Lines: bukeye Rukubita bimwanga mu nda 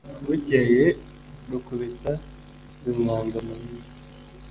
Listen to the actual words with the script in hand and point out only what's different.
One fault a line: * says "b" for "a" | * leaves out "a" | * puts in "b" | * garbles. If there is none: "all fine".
all fine